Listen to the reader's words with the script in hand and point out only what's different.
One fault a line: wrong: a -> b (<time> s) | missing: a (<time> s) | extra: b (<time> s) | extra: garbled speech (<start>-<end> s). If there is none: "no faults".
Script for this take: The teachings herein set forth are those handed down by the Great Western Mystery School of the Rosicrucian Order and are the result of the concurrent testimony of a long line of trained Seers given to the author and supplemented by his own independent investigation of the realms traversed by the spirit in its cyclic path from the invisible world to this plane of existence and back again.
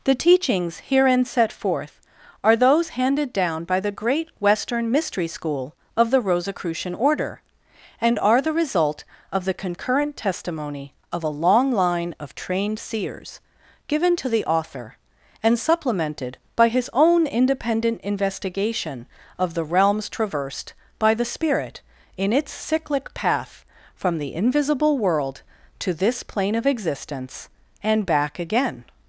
no faults